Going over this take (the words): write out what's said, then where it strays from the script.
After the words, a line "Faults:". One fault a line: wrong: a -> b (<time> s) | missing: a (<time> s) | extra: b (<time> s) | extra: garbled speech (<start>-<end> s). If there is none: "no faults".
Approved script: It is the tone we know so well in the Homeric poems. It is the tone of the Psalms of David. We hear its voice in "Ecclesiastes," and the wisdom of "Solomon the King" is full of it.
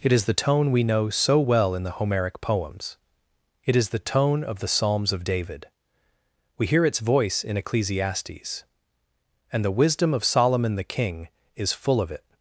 It is the tone we know so well in the Homeric poems. It is the tone of the Psalms of David. We hear its voice in "Ecclesiastes," and the wisdom of "Solomon the King" is full of it.
Faults:
no faults